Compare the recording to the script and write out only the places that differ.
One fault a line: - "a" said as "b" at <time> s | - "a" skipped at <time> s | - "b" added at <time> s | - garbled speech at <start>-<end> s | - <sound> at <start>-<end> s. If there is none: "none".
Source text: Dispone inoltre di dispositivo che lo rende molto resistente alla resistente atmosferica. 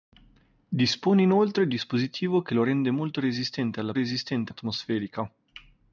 none